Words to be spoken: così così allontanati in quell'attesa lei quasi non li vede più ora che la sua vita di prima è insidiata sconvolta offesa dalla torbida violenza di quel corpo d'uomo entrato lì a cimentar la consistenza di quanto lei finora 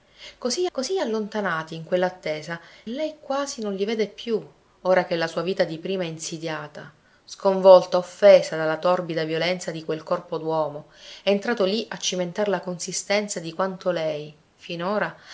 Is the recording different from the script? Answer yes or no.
no